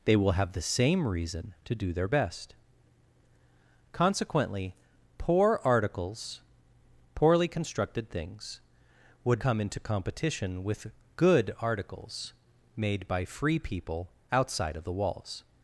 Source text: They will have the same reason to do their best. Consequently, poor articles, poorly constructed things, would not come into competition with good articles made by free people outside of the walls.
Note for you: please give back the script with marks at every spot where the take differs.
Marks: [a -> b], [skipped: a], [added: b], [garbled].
They will have the same reason to do their best. Consequently, poor articles, poorly constructed things, would [skipped: not] come into competition with good articles made by free people outside of the walls.